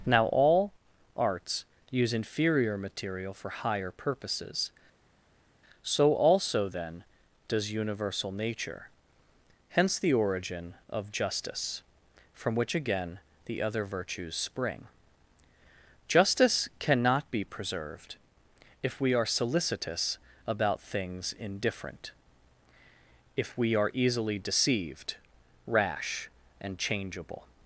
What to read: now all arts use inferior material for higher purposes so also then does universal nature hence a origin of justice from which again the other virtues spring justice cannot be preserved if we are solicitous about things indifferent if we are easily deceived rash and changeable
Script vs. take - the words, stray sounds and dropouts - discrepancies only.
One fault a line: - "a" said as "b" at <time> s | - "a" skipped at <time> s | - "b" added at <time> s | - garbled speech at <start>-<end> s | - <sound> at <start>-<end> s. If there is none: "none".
- "a" said as "the" at 10.0 s